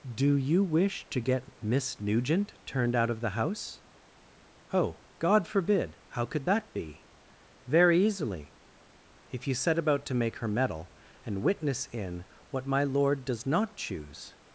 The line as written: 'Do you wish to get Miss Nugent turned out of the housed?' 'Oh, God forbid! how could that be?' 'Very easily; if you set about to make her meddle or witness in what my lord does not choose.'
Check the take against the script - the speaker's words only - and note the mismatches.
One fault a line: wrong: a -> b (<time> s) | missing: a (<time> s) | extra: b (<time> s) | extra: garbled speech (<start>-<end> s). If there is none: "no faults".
wrong: housed -> house (3.4 s)
wrong: or -> and (11.2 s)